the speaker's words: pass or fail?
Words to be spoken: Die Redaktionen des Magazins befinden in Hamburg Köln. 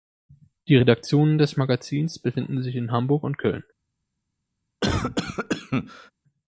fail